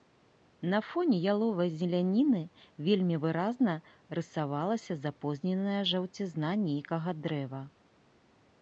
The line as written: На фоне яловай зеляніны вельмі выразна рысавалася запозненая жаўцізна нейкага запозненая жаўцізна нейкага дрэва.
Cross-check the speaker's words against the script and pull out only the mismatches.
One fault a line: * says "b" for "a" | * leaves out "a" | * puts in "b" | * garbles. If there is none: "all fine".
* leaves out "запозненая жаўцізна нейкага"